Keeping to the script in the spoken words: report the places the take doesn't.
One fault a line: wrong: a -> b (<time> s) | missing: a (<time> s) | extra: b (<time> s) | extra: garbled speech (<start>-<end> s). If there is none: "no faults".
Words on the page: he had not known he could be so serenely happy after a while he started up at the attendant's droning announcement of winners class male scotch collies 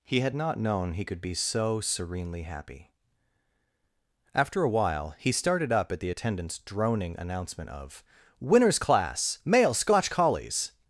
no faults